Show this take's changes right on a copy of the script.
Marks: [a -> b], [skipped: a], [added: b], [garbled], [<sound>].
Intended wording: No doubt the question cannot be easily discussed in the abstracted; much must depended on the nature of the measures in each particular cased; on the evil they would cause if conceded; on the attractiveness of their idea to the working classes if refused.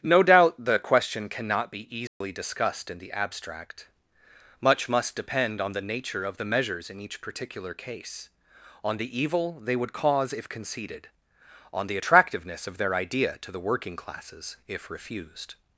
No doubt the question cannot be easily [dropout] discussed in the [abstracted; -> abstract] much must [depended -> depend] on the nature of the measures in each particular [cased; -> case] on the evil they would cause if conceded; on the attractiveness of their idea to the working classes if refused.